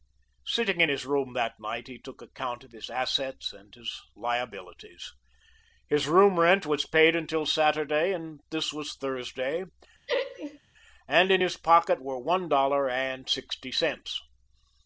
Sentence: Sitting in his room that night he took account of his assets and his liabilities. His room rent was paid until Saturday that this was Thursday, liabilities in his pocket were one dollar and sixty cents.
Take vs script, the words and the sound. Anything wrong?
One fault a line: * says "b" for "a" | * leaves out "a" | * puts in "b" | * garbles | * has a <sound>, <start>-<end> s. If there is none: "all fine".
* says "and" for "that"
* has a laugh, 10.1-10.6 s
* says "and" for "liabilities"